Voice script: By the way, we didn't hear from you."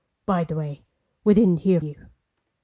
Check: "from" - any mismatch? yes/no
yes